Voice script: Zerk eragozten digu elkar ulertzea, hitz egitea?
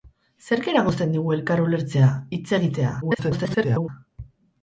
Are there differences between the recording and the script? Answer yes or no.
yes